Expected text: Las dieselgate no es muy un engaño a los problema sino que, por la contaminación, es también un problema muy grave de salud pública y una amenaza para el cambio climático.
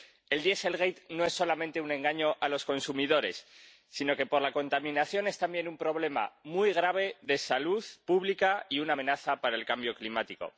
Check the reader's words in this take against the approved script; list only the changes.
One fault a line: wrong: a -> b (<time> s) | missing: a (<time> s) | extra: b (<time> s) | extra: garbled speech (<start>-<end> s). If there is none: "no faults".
wrong: Las -> El (0.3 s)
wrong: muy -> solamente (1.3 s)
wrong: problema -> consumidores (2.6 s)